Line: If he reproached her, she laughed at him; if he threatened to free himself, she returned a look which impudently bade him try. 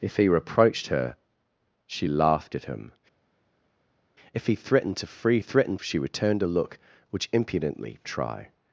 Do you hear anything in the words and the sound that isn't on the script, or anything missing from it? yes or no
yes